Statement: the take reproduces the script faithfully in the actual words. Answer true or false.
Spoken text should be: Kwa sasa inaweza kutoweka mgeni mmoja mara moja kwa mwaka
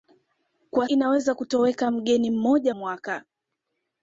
false